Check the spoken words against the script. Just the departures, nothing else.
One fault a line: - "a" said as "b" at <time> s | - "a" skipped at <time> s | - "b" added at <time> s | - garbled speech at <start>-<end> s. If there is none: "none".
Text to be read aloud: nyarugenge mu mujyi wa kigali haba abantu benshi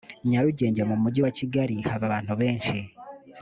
none